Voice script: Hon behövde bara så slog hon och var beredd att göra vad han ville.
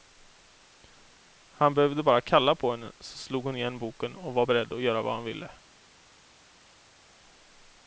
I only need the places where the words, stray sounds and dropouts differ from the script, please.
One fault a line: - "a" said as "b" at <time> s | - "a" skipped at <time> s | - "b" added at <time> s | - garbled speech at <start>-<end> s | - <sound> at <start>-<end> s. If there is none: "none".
- "Hon" said as "Han" at 1.5 s
- "kalla på henne" added at 2.2 s
- "igen boken" added at 3.5 s